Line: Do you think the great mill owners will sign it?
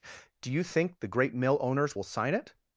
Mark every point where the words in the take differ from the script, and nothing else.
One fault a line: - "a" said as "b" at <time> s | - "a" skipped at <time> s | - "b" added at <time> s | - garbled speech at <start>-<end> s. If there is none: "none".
none